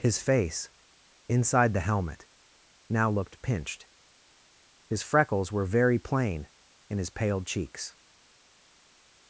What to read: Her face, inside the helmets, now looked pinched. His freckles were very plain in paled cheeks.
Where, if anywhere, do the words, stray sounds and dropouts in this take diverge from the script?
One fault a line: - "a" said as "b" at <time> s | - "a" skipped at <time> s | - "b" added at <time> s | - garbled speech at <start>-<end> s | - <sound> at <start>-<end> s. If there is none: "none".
- "Her" said as "His" at 0.0 s
- "helmets" said as "helmet" at 1.9 s
- "his" added at 7.0 s